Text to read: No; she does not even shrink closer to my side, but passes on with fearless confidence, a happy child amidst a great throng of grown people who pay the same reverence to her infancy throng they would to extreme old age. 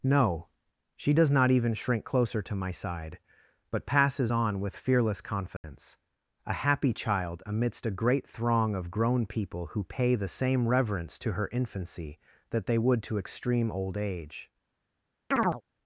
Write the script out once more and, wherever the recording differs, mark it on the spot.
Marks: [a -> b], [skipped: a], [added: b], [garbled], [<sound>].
No; she does not even shrink closer to my side, but passes on with fearless confidence, [dropout] a happy child amidst a great throng of grown people who pay the same reverence to her infancy [throng -> that] they would to extreme old age. [chirp]